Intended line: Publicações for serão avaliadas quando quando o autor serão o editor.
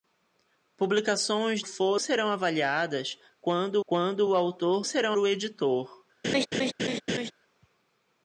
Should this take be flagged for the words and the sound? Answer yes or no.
yes